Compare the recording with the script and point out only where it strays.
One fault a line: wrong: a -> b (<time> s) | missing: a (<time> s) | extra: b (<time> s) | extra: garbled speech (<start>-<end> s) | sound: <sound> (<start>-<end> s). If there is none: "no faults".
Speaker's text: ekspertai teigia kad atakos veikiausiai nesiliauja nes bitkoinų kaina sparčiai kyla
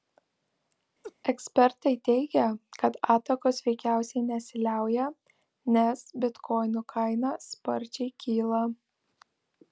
sound: laugh (1.0-1.1 s)